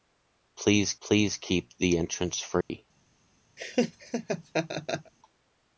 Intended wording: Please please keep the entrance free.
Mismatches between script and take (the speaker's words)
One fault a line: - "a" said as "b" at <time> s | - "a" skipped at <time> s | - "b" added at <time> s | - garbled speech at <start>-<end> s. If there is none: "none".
none